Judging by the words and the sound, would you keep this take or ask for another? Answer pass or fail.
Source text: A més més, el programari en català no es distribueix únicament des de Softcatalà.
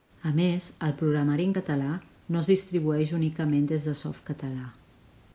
fail